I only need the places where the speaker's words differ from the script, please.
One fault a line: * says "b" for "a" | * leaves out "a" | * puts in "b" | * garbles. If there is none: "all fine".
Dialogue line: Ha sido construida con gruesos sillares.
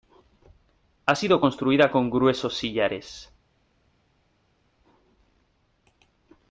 all fine